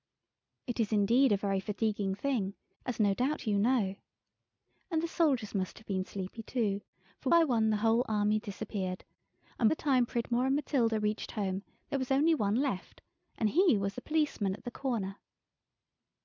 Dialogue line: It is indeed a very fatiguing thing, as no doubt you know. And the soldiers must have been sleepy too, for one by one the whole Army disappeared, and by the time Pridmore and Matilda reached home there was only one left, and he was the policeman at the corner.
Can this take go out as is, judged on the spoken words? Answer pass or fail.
fail